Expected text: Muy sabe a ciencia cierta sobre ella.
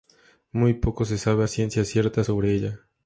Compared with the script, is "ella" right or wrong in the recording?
right